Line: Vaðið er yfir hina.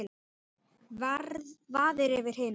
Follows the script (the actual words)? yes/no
yes